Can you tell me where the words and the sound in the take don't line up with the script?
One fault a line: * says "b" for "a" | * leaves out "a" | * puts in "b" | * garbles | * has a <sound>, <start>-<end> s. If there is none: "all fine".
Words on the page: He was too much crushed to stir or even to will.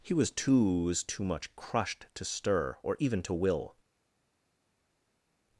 * puts in "was too"